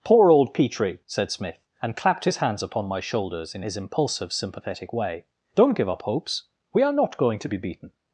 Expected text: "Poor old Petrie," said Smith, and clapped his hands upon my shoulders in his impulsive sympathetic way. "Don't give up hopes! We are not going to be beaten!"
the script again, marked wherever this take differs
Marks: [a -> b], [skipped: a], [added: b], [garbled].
"Poor old Petrie," said Smith, and clapped his hands upon my shoulders in his impulsive sympathetic way. "Don't give up hopes! We are not going to be beaten!"